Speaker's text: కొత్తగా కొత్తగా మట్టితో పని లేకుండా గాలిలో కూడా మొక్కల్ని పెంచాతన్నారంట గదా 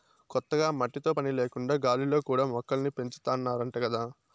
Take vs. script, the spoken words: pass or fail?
fail